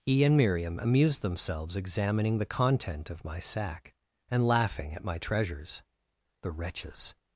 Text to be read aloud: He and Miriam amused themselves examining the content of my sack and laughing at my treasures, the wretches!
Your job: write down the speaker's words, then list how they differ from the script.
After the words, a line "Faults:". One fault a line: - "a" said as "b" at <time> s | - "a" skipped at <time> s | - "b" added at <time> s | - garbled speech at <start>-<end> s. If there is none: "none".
He and Miriam amused themselves examining the content of my sack and laughing at my treasures, the wretches!
Faults:
none